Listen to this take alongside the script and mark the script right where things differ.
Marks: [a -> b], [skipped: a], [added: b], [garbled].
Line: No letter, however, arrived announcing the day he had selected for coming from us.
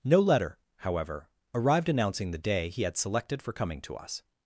No letter, however, arrived announcing the day he had selected for coming [from -> to] us.